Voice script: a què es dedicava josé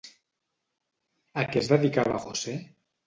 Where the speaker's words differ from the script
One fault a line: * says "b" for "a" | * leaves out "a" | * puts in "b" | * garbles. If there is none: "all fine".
all fine